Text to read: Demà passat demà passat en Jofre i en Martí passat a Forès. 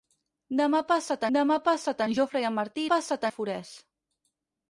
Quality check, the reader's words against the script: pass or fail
pass